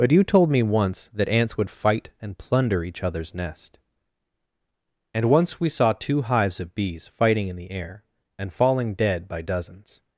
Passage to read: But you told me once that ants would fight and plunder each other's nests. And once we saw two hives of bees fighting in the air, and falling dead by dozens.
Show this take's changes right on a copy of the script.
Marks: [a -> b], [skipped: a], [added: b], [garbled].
But you told me once that ants would fight and plunder each other's [nests. -> nest] And once we saw two hives of bees fighting in the air, and falling dead by dozens.